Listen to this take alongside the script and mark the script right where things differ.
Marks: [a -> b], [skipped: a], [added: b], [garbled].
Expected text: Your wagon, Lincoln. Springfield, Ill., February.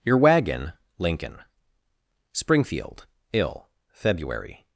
Your wagon, Lincoln. Springfield, Ill., February.